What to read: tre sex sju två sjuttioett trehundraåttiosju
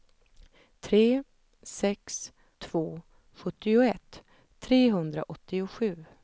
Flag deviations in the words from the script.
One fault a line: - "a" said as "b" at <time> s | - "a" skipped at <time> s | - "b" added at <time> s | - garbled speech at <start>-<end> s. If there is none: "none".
- "sju" skipped at 2.3 s